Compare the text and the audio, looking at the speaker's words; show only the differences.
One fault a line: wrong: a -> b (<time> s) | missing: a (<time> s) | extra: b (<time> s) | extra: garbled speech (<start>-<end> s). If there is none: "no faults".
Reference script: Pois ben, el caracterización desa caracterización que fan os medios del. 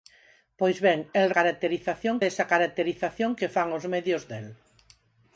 no faults